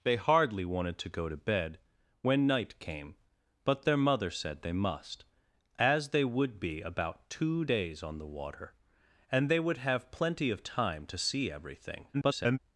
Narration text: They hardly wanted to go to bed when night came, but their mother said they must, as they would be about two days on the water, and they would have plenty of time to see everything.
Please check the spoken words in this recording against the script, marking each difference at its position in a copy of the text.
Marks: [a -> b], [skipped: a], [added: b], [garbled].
They hardly wanted to go to bed when night came, but their mother said they must, as they would be about two days on the water, and they would have plenty of time to see everything. [garbled]